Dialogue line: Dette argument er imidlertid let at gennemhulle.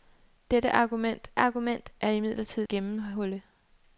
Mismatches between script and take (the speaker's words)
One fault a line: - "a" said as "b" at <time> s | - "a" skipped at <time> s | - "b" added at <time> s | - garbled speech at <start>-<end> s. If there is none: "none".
- "argument" added at 1.4 s
- "let at" skipped at 2.7 s